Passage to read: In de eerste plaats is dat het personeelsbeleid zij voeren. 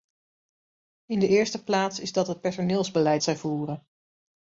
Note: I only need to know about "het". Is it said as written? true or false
true